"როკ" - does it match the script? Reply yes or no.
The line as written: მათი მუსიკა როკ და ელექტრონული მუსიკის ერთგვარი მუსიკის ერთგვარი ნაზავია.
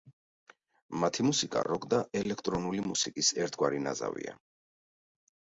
yes